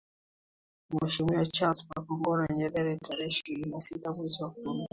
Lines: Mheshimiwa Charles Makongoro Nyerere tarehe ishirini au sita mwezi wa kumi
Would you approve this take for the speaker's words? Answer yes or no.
no